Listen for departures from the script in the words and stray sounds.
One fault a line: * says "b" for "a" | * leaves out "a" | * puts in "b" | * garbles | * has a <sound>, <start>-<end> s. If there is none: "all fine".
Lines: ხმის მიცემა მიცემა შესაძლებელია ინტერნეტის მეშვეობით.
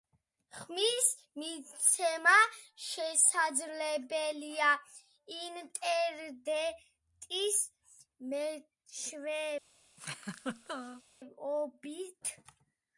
* leaves out "მიცემა"
* has a laugh, 10.0-11.0 s